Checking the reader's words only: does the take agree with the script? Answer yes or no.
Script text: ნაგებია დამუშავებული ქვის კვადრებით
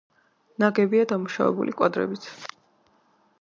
no